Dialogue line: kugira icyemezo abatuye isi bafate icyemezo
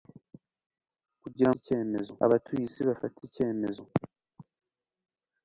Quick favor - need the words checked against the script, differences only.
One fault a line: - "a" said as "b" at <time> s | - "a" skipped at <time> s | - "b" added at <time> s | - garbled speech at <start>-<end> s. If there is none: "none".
none